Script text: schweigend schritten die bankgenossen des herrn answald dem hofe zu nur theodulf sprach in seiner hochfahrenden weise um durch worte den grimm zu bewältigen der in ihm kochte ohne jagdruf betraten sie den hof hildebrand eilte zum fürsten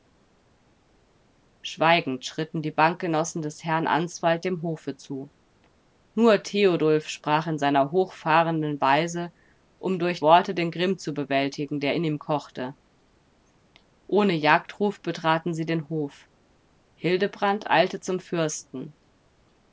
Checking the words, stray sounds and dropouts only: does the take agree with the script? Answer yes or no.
yes